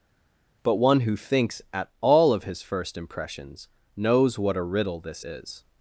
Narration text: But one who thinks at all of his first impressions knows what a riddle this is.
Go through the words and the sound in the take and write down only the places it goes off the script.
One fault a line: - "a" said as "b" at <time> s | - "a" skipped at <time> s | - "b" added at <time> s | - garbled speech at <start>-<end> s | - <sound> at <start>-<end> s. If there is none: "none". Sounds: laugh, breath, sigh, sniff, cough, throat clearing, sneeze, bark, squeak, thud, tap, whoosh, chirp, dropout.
none